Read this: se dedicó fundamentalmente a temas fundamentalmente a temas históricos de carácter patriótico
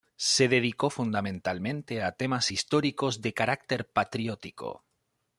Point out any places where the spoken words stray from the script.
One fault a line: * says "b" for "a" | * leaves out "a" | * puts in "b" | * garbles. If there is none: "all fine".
* leaves out "fundamentalmente a temas"